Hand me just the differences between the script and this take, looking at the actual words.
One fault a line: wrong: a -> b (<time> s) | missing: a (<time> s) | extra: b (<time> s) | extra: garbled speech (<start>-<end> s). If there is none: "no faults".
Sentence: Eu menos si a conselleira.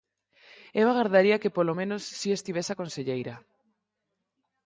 extra: agardaría que polo (0.9 s)
extra: estivese (2.3 s)